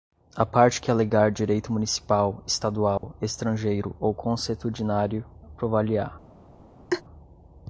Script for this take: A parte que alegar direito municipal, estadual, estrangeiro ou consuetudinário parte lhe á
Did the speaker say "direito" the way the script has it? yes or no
yes